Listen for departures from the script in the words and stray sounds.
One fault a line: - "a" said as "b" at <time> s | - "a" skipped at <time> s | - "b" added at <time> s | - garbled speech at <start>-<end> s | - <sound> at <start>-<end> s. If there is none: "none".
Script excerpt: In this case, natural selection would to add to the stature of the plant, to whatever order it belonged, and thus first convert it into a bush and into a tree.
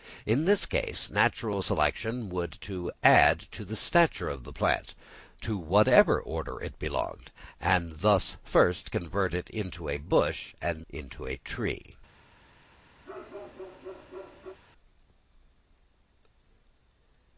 - bark at 13.0-14.6 s